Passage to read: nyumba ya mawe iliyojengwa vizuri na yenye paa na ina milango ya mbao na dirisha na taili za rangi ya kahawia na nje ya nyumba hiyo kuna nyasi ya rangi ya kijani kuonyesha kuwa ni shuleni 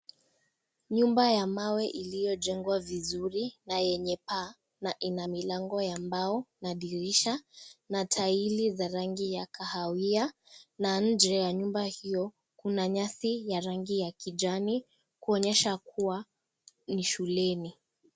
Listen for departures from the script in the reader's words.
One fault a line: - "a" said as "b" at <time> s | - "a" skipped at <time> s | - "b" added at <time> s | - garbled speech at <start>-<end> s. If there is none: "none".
none